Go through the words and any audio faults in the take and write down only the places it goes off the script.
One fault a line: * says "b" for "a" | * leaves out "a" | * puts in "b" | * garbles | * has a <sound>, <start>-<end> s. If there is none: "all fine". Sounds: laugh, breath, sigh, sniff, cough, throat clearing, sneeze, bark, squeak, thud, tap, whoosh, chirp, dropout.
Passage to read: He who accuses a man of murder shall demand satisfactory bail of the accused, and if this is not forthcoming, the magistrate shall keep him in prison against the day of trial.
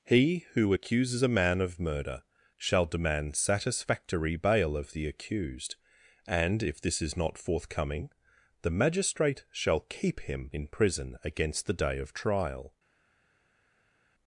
all fine